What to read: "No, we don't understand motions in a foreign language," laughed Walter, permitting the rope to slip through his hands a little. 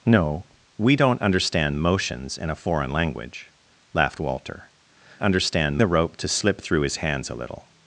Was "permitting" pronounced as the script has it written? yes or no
no